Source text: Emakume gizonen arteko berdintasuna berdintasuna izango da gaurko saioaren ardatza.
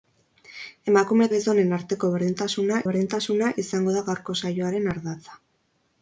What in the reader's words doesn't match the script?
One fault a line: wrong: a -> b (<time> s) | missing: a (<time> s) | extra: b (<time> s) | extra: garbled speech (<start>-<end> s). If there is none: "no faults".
no faults